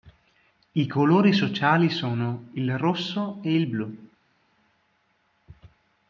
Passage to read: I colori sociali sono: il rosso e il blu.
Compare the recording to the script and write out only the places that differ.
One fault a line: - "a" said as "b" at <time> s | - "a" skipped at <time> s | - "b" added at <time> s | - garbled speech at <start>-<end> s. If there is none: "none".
none